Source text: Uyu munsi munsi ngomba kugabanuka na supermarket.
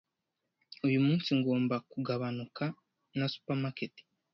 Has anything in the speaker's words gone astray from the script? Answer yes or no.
yes